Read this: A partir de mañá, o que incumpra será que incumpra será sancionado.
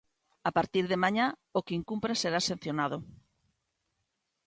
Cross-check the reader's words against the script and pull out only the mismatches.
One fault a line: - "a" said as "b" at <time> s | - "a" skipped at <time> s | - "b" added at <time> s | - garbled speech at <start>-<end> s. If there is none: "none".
- "que incumpra será" skipped at 2.4 s